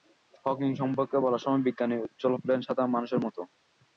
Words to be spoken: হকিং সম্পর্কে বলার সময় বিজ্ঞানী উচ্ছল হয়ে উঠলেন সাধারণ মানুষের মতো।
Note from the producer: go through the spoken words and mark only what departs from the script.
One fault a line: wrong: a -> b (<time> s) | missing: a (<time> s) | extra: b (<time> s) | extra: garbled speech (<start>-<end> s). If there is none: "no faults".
missing: হয়ে (2.3 s)